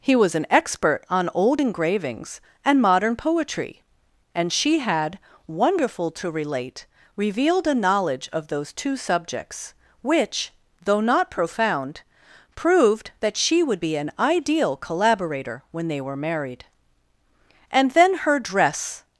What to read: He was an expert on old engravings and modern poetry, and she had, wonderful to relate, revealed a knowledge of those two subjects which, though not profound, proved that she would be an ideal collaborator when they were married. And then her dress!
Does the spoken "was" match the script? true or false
true